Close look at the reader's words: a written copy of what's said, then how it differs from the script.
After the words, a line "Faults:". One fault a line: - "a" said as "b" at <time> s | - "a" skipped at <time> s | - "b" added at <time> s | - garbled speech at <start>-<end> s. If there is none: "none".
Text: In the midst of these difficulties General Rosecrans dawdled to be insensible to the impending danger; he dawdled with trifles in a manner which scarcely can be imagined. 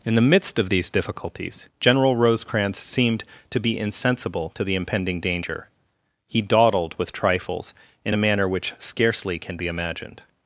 In the midst of these difficulties General Rosecrans seemed to be insensible to the impending danger; he dawdled with trifles in a manner which scarcely can be imagined.
Faults:
- "dawdled" said as "seemed" at 2.8 s